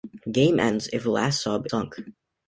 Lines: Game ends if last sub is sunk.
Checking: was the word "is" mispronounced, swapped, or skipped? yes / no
yes